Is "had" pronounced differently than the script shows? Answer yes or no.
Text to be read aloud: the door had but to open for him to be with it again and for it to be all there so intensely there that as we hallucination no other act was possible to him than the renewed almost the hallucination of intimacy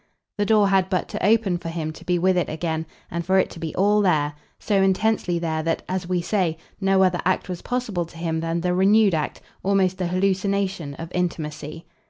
no